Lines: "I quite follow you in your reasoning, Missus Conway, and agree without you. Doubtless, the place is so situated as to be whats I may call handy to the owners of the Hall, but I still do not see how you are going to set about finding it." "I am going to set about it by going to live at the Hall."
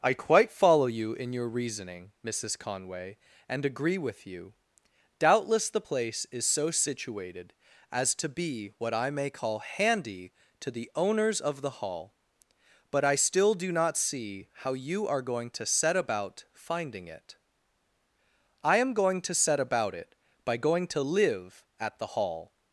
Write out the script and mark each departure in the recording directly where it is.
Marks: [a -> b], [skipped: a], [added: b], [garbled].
"I quite follow you in your reasoning, Missus Conway, and agree [without -> with] you. Doubtless, the place is so situated as to be [whats -> what] I may call handy to the owners of the Hall, but I still do not see how you are going to set about finding it." "I am going to set about it by going to live at the Hall."